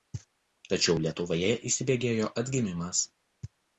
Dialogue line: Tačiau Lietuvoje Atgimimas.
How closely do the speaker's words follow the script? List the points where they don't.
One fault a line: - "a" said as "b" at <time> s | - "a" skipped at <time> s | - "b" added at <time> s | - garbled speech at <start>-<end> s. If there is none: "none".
- "įsibėgėjo" added at 1.7 s